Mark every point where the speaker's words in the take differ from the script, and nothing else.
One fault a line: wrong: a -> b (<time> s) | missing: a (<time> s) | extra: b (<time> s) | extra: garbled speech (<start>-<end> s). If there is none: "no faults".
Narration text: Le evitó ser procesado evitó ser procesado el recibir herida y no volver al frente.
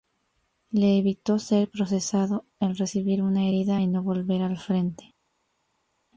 missing: evitó ser procesado (2.4 s)
extra: una (3.2 s)